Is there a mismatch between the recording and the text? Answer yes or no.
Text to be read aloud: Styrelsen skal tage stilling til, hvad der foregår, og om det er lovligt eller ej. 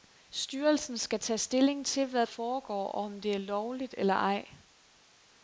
yes